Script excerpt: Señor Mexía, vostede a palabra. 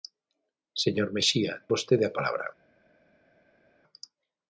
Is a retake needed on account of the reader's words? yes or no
no